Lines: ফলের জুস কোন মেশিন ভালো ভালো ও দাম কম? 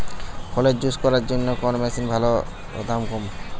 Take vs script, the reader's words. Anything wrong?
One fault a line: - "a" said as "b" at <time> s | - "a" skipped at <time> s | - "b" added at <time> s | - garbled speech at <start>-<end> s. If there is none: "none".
- "করার জন্য" added at 1.0 s
- "ভালো" skipped at 2.3 s